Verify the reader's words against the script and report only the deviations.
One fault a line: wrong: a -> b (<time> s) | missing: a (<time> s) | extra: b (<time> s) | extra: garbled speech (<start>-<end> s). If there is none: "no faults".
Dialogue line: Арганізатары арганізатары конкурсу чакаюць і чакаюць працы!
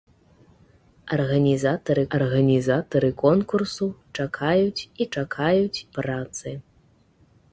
no faults